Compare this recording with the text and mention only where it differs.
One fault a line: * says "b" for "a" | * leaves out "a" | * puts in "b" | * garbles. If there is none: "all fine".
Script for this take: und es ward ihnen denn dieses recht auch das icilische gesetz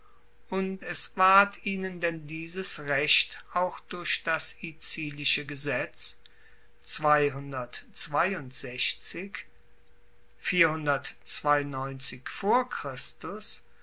* puts in "durch"